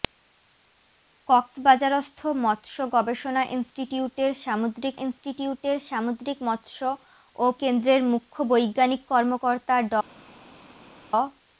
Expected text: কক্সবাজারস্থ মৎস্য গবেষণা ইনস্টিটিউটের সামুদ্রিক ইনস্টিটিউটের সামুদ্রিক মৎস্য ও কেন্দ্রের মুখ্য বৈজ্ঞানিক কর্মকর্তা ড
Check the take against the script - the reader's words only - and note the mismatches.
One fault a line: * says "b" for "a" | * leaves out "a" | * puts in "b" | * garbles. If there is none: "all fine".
all fine